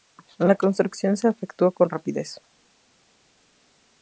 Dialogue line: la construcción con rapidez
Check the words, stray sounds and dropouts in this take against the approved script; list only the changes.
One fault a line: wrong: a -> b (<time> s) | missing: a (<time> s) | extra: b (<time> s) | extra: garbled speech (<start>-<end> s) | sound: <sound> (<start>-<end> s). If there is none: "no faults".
extra: se efectuó (1.1 s)